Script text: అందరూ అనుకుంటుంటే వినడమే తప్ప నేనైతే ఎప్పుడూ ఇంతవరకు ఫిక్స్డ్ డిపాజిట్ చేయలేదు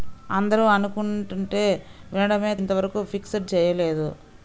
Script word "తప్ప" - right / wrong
wrong